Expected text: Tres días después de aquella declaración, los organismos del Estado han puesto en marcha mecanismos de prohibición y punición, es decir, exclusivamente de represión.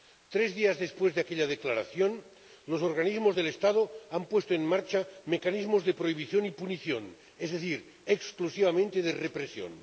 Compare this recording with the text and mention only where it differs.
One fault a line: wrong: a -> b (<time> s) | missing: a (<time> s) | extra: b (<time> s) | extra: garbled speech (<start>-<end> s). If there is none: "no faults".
no faults